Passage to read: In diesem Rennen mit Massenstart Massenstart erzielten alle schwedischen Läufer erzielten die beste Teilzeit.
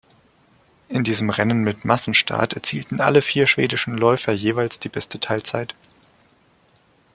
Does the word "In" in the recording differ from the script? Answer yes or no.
no